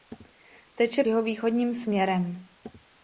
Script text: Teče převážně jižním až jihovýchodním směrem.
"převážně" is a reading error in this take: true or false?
true